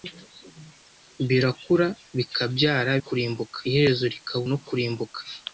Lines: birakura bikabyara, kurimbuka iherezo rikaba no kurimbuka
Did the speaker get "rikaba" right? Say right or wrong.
right